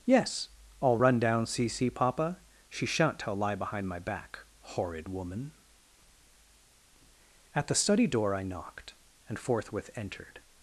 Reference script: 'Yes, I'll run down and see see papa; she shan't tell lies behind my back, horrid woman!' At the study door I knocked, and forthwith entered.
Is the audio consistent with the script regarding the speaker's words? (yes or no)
no